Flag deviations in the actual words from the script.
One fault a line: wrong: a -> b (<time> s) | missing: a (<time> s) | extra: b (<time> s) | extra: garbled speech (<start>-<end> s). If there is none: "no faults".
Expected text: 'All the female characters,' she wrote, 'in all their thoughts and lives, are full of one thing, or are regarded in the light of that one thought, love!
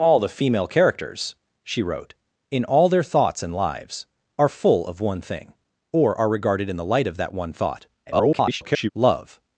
extra: garbled speech (8.1-8.9 s)